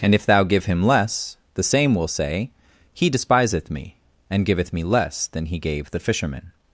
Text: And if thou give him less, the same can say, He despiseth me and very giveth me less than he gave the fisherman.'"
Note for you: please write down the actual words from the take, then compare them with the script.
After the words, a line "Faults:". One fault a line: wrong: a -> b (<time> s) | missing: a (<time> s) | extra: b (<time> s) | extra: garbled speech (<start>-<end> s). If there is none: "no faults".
And if thou give him less, the same will say, He despiseth me and giveth me less than he gave the fisherman.'"
Faults:
wrong: can -> will (1.9 s)
missing: very (4.5 s)